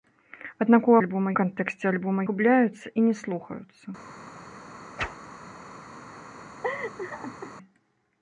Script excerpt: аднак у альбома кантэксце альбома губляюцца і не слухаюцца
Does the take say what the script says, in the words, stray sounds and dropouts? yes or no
no